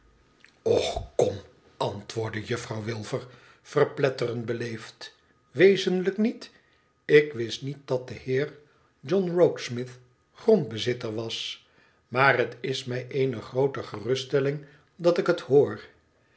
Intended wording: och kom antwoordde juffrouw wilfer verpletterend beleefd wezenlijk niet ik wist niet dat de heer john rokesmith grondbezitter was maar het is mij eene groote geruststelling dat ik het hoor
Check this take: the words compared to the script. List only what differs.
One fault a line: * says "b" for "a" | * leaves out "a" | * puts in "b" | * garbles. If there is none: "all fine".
all fine